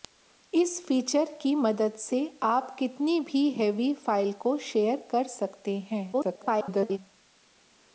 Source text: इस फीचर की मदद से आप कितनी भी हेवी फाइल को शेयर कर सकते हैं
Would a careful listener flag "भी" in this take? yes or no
no